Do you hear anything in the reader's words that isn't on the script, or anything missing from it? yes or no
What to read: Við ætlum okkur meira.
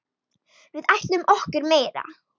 no